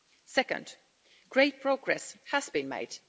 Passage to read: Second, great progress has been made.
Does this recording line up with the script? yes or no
yes